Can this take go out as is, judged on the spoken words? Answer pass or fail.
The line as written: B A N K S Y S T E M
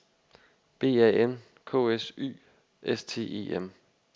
pass